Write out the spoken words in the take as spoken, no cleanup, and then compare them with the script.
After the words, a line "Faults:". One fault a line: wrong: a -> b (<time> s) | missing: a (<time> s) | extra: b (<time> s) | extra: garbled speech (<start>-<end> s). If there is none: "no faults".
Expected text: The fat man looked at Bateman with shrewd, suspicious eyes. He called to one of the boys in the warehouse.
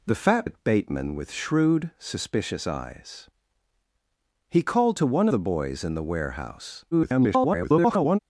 The fat at Bateman with shrewd, suspicious eyes. He called to one the boys in the warehouse. [garbled]
Faults:
missing: man looked (0.5 s)
missing: of (5.3 s)
extra: garbled speech (6.9-8.2 s)